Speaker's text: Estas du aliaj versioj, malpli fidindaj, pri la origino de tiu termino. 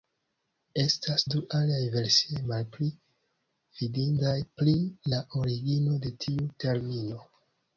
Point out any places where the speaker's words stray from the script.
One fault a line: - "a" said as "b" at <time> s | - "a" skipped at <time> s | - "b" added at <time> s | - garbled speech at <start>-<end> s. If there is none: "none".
none